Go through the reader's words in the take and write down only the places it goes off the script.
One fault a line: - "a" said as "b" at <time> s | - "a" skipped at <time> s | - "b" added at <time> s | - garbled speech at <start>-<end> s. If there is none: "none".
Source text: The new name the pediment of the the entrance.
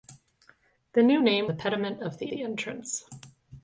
none